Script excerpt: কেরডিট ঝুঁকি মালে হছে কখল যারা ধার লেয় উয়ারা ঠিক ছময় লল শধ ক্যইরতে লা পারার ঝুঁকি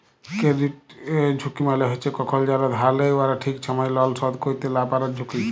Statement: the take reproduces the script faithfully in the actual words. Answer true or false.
true